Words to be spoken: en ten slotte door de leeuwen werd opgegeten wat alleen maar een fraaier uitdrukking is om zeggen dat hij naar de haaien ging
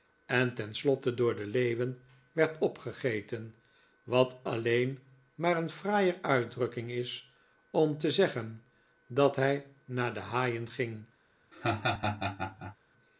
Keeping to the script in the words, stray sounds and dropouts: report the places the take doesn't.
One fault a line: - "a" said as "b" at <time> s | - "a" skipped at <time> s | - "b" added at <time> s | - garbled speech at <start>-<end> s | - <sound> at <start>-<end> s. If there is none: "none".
- "te" added at 8.0 s
- laugh at 11.5-12.8 s